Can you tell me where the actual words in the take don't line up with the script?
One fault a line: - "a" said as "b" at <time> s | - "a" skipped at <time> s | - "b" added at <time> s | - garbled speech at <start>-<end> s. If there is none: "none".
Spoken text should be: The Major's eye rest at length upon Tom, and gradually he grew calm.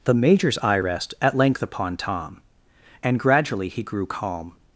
none